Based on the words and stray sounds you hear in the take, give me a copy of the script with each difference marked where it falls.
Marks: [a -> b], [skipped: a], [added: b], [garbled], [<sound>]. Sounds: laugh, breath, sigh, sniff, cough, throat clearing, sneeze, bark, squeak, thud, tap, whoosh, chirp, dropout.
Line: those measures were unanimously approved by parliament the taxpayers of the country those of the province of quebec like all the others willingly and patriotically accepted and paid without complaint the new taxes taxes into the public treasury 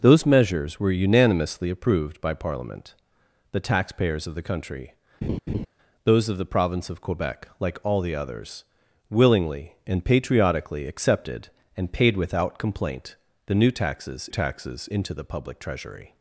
those measures were unanimously approved by parliament the taxpayers of the country [laugh] those of the province of quebec like all the others willingly and patriotically accepted and paid without complaint the new taxes taxes into the public treasury